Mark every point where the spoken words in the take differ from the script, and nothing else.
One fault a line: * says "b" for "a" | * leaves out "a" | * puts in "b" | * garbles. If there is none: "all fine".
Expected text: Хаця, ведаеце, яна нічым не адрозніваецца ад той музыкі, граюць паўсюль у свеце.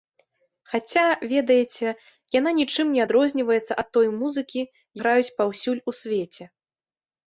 all fine